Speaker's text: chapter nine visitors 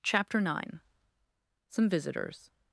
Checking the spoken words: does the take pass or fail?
fail